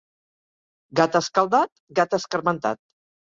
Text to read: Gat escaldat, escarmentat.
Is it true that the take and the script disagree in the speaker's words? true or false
true